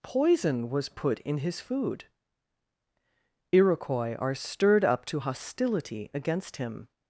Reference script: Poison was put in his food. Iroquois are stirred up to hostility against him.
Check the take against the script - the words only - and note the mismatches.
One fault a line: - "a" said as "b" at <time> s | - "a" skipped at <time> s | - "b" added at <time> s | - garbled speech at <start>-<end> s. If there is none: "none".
none